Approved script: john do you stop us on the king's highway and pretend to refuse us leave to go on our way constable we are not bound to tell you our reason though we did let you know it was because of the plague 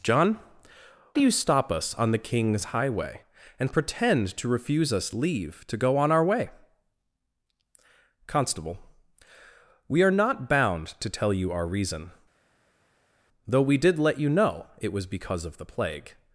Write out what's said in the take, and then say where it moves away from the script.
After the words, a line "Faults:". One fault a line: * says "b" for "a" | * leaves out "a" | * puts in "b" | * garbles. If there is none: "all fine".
john do you stop us on the king's highway and pretend to refuse us leave to go on our way constable we are not bound to tell you our reason though we did let you know it was because of the plague
Faults:
all fine